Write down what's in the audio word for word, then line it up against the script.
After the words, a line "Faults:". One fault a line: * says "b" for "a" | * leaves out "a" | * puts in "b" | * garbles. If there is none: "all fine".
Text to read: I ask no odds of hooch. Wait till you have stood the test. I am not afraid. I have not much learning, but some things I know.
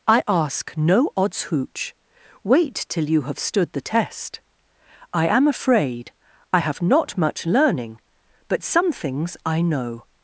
I ask no odds hooch. Wait till you have stood the test. I am afraid. I have not much learning, but some things I know.
Faults:
* leaves out "of"
* leaves out "not"